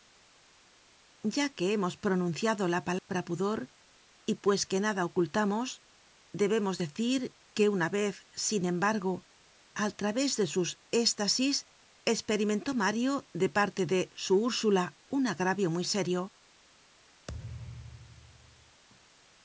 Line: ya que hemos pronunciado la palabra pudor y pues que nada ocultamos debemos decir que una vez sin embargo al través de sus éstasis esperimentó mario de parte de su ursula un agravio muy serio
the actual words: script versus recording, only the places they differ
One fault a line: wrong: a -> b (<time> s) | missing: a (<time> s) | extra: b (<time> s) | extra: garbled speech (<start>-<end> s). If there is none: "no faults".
no faults